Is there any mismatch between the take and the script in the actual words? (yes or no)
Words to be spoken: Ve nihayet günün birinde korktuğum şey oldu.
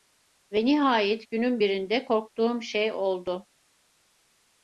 no